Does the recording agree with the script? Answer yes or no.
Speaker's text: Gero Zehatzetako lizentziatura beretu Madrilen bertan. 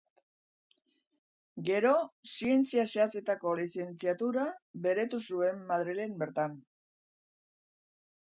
no